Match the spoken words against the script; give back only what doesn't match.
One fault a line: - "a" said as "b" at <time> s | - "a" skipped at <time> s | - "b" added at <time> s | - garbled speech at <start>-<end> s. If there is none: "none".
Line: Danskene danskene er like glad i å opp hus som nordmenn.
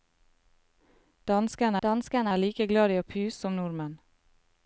none